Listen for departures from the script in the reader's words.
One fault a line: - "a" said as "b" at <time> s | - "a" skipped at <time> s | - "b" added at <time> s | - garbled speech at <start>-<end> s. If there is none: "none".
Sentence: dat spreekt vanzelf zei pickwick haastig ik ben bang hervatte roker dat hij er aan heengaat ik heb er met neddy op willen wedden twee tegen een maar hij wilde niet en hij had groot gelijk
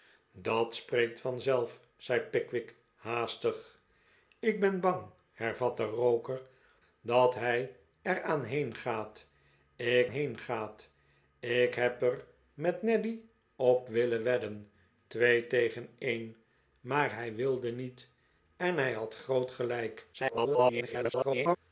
- "heengaat ik" added at 10.1 s
- garbled speech at 20.1-21.6 s